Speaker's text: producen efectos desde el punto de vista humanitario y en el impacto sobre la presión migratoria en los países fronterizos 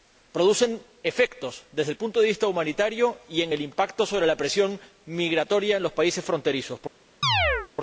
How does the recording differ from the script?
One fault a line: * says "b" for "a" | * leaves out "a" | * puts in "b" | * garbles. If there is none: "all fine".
all fine